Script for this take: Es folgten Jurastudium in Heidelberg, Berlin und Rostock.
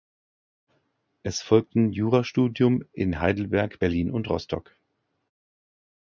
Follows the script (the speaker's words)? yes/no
yes